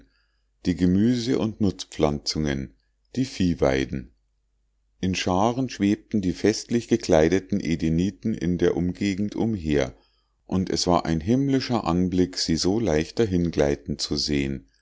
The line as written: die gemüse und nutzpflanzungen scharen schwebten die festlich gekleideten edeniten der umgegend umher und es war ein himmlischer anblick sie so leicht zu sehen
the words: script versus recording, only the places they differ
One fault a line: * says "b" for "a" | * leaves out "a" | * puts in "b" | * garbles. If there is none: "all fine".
* puts in "die viehweiden in"
* puts in "in"
* puts in "dahingleiten"